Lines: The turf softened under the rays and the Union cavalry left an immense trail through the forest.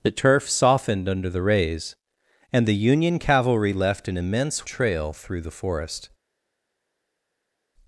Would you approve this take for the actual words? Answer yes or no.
yes